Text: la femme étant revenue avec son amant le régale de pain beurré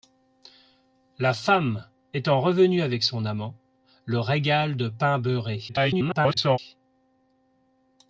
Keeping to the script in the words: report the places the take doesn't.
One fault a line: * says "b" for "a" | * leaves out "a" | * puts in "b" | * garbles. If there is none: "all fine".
* garbles